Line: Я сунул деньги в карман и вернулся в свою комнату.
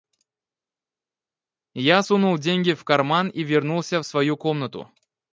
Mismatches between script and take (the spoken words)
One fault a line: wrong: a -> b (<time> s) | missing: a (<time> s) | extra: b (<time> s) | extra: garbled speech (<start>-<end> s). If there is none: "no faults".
no faults